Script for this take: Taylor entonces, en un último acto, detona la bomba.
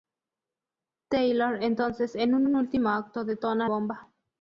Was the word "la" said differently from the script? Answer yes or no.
yes